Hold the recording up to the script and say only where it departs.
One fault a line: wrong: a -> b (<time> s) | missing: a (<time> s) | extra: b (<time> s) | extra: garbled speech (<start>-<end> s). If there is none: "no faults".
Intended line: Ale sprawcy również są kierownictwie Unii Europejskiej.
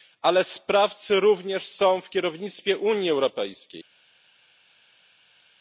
extra: w (2.0 s)